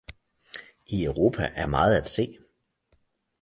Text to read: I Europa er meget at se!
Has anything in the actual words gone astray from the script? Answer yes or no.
no